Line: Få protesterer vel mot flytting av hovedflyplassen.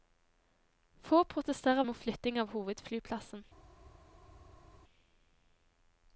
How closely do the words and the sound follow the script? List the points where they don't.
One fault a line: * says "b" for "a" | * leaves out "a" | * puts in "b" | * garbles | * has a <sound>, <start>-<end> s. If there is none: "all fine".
* leaves out "vel"